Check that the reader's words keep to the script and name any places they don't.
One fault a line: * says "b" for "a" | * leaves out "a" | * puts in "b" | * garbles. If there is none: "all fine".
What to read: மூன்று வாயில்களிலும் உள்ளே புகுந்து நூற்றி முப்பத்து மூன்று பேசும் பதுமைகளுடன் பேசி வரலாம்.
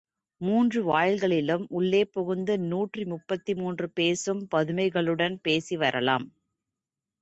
all fine